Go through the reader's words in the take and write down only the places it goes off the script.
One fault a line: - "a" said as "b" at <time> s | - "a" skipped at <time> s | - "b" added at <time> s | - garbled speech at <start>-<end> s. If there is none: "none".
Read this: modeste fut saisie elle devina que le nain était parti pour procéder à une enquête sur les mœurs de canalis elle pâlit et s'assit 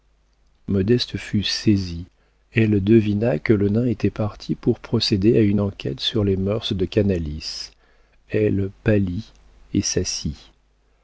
none